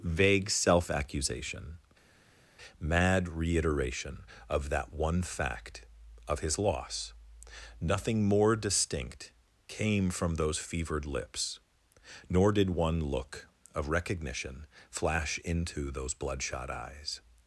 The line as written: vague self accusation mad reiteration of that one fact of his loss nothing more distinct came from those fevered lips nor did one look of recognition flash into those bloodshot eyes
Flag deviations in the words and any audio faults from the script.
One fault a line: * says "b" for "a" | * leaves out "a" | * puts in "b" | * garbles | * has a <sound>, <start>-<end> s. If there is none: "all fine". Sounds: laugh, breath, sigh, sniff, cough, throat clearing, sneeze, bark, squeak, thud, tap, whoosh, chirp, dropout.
all fine